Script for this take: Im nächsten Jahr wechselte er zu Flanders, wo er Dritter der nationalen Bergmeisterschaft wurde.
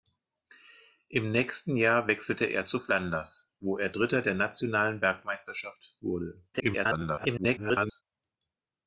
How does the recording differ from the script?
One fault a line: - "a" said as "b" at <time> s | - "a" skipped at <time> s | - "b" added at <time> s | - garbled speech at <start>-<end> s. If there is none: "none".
- garbled speech at 6.5-8.0 s